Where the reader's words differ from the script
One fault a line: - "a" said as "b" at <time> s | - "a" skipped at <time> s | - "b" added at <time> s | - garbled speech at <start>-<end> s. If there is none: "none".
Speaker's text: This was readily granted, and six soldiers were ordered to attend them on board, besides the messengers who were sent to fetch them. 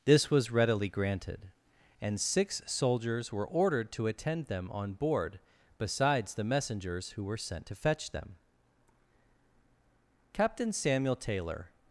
- "Captain Samuel Taylor" added at 10.3 s